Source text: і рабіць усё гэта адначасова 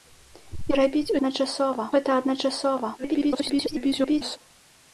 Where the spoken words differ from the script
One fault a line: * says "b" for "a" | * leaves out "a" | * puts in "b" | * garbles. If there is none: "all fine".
* says "адначасова" for "усё"
* garbles